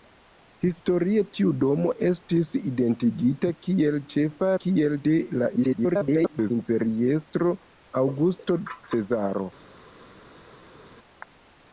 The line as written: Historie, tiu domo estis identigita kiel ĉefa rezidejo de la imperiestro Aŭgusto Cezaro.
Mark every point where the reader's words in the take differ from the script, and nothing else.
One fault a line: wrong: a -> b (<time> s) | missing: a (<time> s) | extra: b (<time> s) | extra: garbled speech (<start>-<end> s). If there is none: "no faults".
wrong: rezidejo -> kiel (4.6 s)
extra: garbled speech (5.6-6.5 s)